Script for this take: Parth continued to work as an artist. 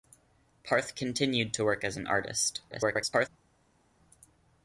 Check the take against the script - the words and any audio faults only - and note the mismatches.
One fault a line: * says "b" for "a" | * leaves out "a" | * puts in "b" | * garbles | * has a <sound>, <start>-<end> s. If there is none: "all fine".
* garbles